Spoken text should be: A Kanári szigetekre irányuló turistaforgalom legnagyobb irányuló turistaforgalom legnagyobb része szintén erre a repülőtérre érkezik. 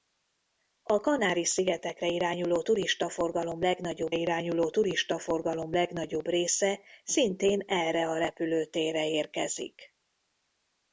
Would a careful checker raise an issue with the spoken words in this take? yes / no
no